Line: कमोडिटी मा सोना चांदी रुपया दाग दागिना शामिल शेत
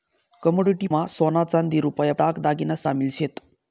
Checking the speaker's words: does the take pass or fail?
pass